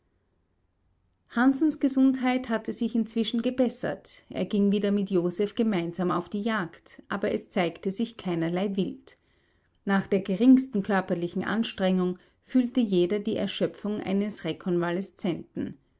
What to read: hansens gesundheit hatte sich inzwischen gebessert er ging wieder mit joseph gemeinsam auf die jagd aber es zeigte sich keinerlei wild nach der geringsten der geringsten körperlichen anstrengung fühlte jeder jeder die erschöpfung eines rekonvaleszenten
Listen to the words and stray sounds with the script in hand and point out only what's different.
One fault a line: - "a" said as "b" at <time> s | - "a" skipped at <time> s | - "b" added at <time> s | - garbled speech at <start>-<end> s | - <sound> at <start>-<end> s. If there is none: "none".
- "der geringsten" skipped at 10.8 s
- "jeder" skipped at 13.2 s